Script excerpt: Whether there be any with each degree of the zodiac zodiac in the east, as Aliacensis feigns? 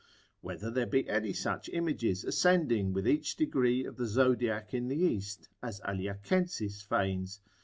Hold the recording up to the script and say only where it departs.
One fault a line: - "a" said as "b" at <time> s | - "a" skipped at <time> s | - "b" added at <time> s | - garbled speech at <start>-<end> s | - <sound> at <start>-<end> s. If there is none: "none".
- "such images ascending" added at 1.3 s
- "zodiac" skipped at 4.7 s